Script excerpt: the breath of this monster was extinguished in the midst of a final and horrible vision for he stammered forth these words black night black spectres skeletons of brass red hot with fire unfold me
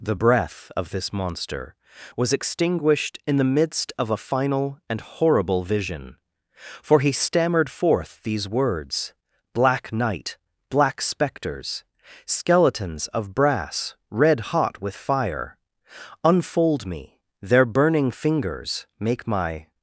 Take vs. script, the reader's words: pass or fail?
fail